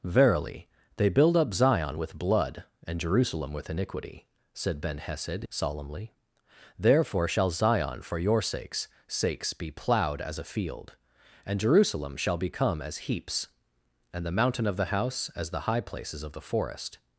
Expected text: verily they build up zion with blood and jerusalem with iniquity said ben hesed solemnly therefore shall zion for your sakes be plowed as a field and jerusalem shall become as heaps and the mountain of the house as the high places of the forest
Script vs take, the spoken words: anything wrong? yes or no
yes